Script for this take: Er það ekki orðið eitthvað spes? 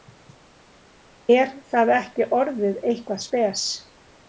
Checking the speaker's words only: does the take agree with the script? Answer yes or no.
yes